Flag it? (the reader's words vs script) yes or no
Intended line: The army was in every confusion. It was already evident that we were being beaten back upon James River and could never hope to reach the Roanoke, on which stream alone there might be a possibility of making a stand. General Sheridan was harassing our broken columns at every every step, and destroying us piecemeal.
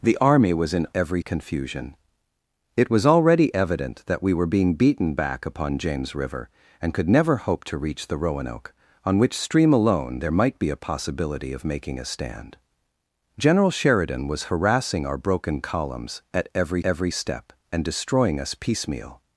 no